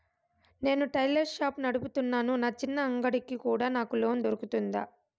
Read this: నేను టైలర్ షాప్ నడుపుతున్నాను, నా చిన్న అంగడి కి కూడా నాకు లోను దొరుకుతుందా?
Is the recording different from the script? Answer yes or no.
no